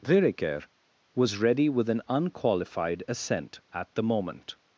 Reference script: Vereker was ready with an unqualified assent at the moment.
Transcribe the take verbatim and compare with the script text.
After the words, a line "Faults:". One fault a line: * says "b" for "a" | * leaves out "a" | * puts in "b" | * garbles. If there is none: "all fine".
Vereker was ready with an unqualified assent at the moment.
Faults:
all fine